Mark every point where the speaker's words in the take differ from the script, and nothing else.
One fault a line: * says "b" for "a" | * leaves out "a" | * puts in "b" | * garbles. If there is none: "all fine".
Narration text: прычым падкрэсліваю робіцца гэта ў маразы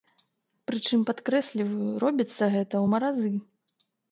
all fine